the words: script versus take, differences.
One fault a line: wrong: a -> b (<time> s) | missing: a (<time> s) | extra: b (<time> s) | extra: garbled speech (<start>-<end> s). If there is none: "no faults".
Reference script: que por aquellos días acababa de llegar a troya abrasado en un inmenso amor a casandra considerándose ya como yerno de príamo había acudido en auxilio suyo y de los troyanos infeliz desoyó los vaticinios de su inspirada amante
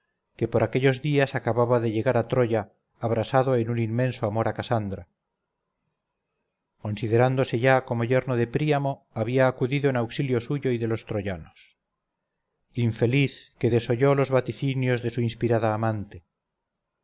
extra: que (13.6 s)